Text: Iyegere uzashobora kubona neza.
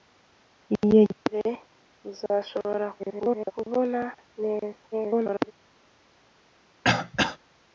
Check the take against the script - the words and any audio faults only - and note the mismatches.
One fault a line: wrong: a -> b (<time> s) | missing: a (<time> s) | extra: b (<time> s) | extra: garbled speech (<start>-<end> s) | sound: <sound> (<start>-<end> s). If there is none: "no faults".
extra: garbled speech (3.0-3.5 s)
extra: garbled speech (4.9-5.5 s)
sound: throat clearing (6.8-7.4 s)